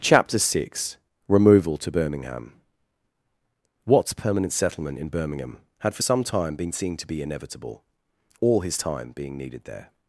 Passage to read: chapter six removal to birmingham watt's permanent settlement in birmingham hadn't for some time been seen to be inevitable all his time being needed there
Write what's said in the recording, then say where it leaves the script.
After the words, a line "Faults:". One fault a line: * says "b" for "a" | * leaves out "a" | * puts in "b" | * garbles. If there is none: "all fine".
chapter six removal to birmingham watt's permanent settlement in birmingham had for some time been seen to be inevitable all his time being needed there
Faults:
* says "had" for "hadn't"